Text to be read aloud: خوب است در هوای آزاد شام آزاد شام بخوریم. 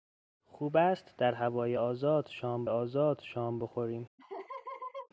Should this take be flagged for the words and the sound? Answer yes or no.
yes